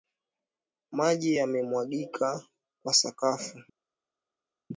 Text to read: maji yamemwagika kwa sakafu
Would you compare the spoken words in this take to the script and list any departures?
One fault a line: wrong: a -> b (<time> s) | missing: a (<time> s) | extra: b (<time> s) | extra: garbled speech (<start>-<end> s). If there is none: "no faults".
no faults